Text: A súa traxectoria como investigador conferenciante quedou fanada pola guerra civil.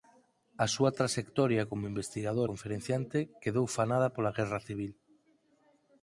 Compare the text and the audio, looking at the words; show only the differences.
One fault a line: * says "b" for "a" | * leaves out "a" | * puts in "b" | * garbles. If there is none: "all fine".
all fine